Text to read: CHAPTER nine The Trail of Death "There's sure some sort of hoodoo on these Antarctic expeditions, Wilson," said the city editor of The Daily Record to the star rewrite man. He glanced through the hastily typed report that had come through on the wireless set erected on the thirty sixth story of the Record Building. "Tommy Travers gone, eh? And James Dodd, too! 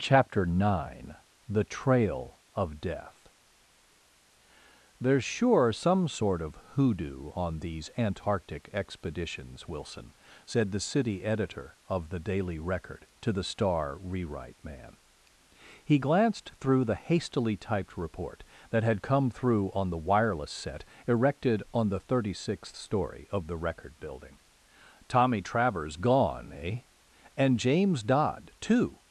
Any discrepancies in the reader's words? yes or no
no